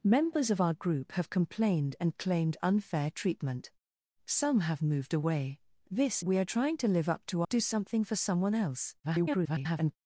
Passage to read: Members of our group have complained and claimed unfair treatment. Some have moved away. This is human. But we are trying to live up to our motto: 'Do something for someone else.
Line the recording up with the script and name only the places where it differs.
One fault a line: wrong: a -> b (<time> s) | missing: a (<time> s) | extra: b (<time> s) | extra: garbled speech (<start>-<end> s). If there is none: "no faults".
missing: is human But (6.2 s)
missing: our motto (7.4 s)
extra: garbled speech (9.0-10.0 s)